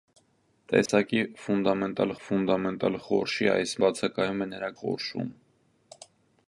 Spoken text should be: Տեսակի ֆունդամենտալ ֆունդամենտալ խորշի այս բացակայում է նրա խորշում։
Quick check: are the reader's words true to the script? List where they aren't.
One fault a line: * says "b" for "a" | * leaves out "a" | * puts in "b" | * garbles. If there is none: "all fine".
all fine